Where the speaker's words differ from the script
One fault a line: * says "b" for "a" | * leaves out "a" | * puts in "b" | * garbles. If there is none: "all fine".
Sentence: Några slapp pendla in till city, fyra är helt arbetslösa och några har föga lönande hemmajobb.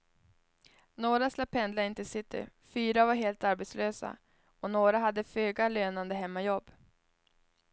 * says "var" for "är"
* says "hade" for "har"